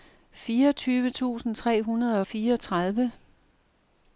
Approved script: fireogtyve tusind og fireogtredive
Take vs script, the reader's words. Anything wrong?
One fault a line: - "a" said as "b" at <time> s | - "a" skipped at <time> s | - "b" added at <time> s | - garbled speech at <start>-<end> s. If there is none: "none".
- "tre hundrede" added at 1.6 s